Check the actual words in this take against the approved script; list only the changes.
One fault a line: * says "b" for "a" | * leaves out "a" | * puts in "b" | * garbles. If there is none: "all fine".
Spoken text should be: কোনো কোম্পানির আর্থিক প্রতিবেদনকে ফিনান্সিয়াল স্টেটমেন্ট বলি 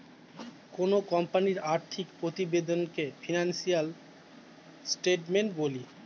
all fine